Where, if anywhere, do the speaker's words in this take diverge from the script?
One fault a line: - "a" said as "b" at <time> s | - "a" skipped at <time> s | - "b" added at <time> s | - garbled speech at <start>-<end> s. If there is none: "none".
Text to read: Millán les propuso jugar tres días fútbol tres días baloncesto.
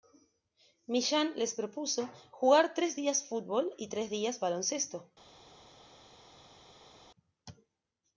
- "y" added at 3.8 s